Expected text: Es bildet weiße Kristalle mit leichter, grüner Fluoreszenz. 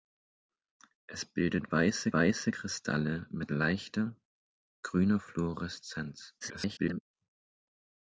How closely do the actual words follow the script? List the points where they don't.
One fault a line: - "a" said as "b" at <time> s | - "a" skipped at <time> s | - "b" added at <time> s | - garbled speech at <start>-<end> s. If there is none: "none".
- "weiße" added at 2.1 s
- garbled speech at 6.4-7.0 s